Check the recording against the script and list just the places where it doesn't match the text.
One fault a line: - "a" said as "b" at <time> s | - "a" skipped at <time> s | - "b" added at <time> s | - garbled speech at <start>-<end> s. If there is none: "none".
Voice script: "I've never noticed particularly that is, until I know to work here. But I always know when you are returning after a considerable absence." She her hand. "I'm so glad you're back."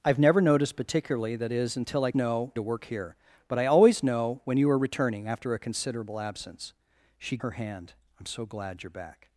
none